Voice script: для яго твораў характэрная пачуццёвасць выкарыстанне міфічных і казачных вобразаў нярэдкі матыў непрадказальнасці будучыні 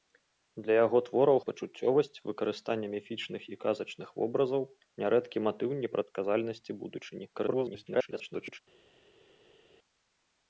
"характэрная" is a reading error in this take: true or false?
true